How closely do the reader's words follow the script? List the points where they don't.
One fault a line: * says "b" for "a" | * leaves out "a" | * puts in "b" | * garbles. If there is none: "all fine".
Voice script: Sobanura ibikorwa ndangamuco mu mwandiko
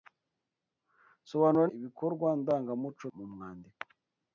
all fine